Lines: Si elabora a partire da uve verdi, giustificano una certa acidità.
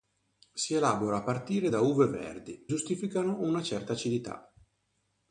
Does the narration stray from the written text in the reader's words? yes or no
no